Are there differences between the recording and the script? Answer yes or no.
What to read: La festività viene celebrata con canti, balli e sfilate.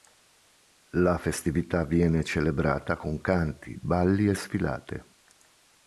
no